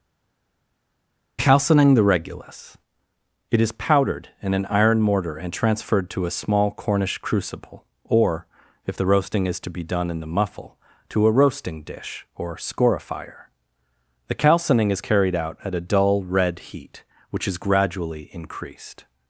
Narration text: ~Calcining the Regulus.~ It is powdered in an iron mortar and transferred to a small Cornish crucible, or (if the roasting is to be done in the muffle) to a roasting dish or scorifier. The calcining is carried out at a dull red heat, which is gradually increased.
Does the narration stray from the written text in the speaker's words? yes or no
no